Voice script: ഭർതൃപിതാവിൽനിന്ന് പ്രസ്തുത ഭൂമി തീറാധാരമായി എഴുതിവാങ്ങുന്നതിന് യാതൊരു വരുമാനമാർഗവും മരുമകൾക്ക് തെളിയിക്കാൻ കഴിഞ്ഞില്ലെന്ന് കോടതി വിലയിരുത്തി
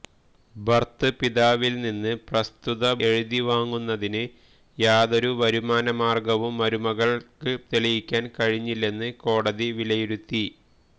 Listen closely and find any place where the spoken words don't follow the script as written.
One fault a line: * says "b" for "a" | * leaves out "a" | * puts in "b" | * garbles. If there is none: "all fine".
* leaves out "ഭൂമി തീറാധാരമായി"